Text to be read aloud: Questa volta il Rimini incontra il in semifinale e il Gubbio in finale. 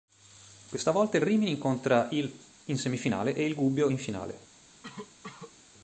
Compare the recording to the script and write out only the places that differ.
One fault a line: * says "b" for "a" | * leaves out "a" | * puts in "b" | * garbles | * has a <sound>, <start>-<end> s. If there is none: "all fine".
* has a cough, 4.8-5.6 s